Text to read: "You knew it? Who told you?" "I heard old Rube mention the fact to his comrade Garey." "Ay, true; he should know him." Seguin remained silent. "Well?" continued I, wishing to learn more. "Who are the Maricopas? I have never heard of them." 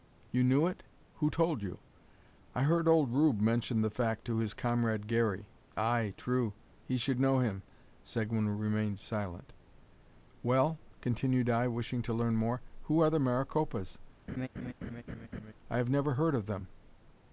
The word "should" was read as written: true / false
true